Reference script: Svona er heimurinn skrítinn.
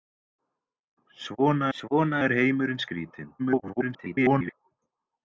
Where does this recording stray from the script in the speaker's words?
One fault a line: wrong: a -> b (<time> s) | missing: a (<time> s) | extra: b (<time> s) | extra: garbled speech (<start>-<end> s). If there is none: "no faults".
extra: svona (1.8 s)
extra: garbled speech (3.4-4.5 s)